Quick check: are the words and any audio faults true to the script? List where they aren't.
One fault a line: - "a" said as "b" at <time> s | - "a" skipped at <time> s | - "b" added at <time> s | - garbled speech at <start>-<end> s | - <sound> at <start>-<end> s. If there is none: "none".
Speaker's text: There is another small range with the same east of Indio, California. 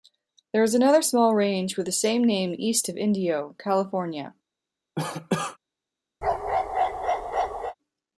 - "name" added at 2.2 s
- cough at 5.0-5.6 s
- bark at 6.2-7.8 s